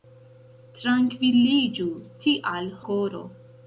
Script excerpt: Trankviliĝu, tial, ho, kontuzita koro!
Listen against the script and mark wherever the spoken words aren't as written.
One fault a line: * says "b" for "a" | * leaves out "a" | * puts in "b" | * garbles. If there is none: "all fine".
* leaves out "ho kontuzita"